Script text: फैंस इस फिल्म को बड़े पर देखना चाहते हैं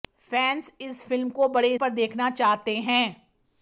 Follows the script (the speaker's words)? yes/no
yes